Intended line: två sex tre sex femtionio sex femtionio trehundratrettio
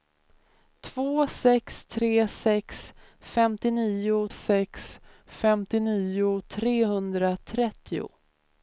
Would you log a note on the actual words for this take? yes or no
no